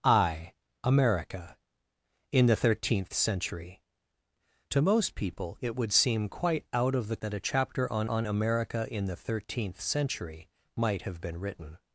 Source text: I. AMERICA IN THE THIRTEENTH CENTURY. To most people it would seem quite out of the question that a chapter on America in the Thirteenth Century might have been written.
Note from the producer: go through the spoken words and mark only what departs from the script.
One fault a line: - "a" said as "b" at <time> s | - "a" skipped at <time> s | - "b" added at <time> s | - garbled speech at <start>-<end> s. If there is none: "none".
- "question" skipped at 7.2 s
- "on" added at 8.1 s